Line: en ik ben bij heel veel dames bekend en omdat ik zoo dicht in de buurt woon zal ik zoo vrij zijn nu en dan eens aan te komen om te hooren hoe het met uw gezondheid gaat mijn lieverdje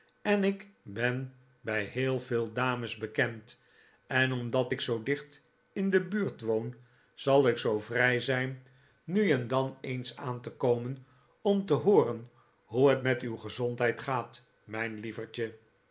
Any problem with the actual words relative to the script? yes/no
no